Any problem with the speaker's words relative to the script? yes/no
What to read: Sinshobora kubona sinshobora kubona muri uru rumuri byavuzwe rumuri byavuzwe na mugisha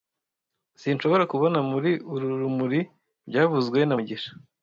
yes